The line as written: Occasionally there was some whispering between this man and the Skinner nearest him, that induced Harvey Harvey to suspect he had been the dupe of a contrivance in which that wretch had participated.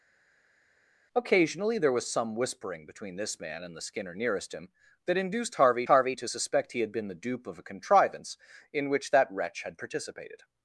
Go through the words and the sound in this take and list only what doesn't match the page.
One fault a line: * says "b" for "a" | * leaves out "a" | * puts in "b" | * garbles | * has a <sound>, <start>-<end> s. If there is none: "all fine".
all fine